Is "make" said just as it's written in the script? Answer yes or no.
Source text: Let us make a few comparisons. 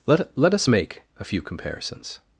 yes